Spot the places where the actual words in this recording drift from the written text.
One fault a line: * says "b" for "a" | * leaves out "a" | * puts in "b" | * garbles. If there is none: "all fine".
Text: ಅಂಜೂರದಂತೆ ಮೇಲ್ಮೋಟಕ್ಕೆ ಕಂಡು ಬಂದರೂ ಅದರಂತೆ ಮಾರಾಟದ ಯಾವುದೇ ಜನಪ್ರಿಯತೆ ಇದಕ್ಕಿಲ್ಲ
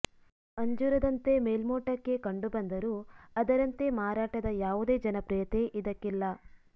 all fine